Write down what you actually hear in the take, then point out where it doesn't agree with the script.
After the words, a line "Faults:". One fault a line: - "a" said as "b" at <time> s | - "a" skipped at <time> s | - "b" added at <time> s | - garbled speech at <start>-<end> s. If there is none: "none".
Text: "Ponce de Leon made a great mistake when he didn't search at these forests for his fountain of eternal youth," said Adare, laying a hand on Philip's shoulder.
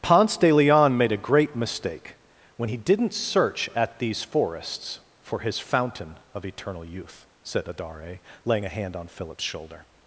"Ponce de Leon made a great mistake when he didn't search at these forests for his fountain of eternal youth," said Adare, laying a hand on Philip's shoulder.
Faults:
none